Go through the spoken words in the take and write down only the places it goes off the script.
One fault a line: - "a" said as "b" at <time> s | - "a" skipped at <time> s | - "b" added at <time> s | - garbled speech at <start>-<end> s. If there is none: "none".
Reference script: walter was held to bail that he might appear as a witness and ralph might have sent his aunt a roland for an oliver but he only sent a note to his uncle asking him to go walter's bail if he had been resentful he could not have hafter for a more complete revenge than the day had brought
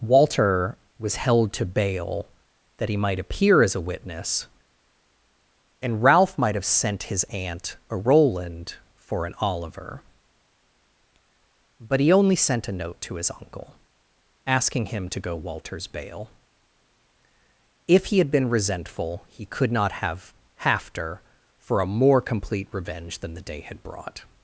none